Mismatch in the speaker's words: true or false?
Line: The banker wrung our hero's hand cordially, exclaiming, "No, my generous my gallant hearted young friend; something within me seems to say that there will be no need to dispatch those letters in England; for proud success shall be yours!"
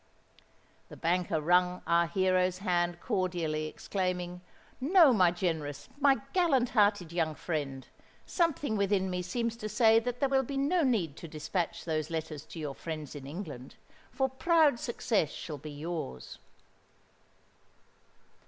true